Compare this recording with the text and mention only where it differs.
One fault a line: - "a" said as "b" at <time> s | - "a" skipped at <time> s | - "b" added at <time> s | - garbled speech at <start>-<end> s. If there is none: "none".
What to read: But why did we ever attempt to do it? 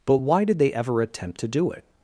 - "we" said as "they" at 0.6 s